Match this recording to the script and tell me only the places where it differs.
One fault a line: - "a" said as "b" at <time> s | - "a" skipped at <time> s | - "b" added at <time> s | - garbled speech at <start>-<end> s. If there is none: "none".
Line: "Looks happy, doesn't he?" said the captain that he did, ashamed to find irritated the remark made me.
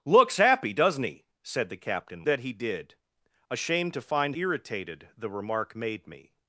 none